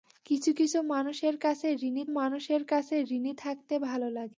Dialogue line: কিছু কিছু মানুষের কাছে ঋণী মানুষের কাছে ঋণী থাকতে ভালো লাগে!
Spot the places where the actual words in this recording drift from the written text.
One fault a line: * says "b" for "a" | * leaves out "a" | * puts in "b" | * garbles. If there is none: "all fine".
all fine